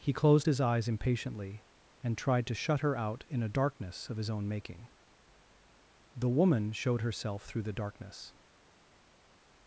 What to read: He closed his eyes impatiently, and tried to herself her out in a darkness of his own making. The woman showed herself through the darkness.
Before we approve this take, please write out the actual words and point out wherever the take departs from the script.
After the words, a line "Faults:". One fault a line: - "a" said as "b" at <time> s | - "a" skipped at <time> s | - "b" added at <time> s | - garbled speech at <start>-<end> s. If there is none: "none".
He closed his eyes impatiently, and tried to shut her out in a darkness of his own making. The woman showed herself through the darkness.
Faults:
- "herself" said as "shut" at 2.5 s